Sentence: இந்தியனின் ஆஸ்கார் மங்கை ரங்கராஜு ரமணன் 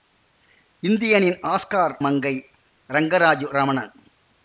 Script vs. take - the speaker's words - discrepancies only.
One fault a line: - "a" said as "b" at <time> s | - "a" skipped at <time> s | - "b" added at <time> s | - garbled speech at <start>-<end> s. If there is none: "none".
none